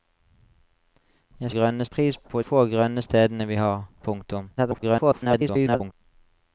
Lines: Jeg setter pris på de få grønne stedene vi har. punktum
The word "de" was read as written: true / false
false